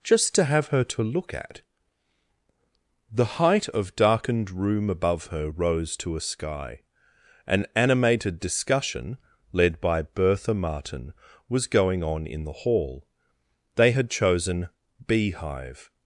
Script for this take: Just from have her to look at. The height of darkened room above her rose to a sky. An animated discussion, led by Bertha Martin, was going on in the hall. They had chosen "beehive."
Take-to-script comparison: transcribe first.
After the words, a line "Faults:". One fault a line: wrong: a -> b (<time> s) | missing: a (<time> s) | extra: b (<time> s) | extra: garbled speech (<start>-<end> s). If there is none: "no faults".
Just to have her to look at. The height of darkened room above her rose to a sky. An animated discussion, led by Bertha Martin, was going on in the hall. They had chosen "beehive."
Faults:
wrong: from -> to (0.3 s)